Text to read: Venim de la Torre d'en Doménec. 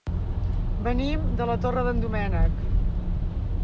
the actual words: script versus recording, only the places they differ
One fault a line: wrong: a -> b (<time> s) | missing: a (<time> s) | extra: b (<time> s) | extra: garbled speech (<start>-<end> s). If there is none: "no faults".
no faults